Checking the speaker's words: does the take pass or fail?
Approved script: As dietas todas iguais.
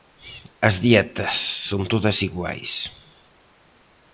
fail